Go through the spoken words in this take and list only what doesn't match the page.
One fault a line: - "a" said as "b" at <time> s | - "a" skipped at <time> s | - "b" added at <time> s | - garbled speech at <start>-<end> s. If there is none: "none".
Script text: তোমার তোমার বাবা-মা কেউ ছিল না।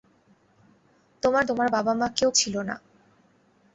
none